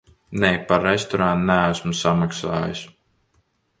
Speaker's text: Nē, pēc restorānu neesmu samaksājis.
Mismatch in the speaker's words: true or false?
true